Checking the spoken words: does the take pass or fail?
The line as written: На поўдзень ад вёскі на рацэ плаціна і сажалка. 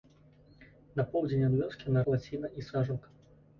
fail